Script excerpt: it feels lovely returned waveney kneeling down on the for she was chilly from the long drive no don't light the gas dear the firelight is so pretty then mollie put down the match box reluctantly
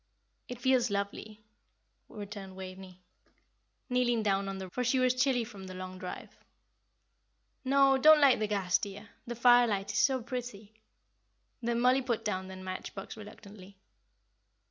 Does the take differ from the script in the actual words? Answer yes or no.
no